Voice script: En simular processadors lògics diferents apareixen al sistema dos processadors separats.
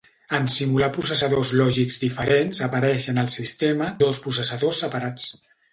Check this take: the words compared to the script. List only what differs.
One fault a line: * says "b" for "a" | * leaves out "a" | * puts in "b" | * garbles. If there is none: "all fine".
all fine